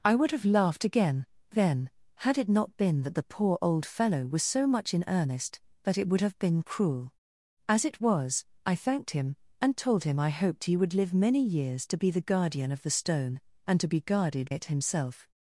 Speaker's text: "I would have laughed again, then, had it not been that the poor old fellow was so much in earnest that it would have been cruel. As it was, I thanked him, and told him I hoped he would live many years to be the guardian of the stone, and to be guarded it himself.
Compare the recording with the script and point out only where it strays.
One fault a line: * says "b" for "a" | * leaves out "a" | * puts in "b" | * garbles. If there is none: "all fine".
all fine